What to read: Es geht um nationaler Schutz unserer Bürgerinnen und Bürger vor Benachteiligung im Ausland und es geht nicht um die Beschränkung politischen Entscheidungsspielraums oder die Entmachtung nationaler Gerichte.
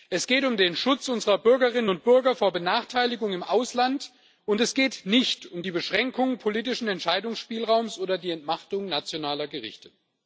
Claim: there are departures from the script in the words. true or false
true